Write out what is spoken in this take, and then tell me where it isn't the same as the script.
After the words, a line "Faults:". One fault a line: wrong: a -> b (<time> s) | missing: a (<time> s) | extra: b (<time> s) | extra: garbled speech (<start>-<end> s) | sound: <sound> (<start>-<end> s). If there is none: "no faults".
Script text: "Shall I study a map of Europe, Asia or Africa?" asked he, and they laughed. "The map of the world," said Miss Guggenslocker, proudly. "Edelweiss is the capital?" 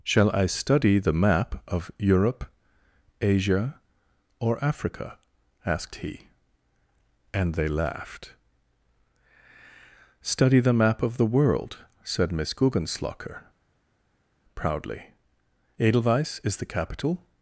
"Shall I study the map of Europe, Asia or Africa?" asked he, and they laughed. "Study the map of the world," said Miss Guggenslocker, proudly. "Edelweiss is the capital?"
Faults:
wrong: a -> the (1.0 s)
extra: Study (10.2 s)